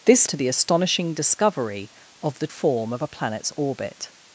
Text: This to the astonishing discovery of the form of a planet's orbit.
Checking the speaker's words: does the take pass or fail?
pass